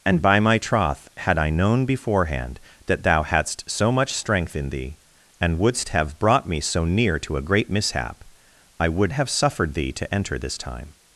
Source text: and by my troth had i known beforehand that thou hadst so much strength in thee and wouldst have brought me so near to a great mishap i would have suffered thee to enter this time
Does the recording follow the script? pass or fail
pass